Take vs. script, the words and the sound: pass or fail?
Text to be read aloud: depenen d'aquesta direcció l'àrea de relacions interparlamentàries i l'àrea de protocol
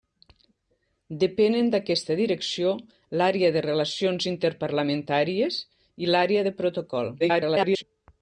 fail